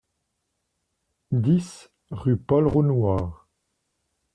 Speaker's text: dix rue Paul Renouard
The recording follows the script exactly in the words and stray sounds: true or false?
true